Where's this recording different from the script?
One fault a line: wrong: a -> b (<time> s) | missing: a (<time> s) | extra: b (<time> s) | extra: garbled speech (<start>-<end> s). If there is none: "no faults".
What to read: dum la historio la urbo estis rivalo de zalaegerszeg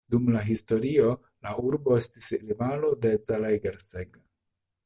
no faults